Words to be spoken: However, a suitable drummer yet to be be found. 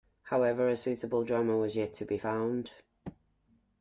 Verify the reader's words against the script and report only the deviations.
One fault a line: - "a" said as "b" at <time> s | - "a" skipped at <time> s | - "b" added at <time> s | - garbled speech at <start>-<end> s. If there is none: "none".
- "was" added at 1.6 s
- "be" skipped at 2.2 s